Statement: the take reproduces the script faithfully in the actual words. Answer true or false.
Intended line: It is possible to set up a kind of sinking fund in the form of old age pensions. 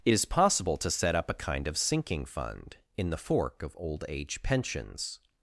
false